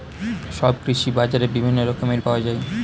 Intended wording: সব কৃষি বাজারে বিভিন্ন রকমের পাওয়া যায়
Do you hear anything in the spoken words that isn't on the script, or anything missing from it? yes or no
no